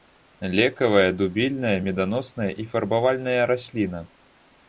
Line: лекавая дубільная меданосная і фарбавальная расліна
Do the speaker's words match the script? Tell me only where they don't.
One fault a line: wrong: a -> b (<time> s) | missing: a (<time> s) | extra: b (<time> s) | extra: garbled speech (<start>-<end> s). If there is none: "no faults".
no faults